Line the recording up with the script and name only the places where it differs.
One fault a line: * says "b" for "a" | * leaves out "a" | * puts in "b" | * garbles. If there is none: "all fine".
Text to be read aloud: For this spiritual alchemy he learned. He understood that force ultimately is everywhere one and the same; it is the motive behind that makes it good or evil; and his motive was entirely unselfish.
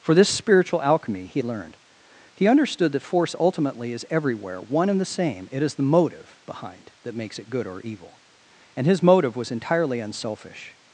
all fine